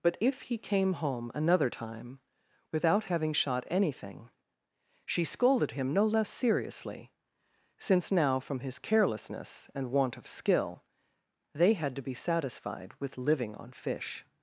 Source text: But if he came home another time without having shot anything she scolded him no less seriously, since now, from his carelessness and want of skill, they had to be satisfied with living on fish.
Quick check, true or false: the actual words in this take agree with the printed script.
true